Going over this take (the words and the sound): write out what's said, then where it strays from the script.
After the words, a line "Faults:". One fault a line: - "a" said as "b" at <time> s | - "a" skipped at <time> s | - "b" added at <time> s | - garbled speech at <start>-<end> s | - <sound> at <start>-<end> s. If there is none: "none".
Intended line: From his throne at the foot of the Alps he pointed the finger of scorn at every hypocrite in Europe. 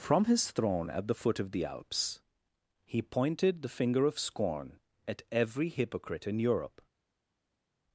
From his throne at the foot of the Alps he pointed the finger of scorn at every hypocrite in Europe.
Faults:
none